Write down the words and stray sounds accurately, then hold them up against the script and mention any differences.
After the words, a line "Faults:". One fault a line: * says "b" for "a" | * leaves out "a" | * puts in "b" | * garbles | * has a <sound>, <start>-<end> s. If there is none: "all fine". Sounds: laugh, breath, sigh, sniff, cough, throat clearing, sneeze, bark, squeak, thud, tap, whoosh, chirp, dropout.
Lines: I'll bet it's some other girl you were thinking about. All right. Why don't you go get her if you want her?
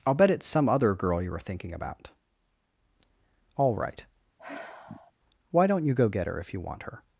I'll bet it's some other girl you were thinking about. All right. Why don't you go get her if you want her?
Faults:
* has a sigh, 4.4-5.1 s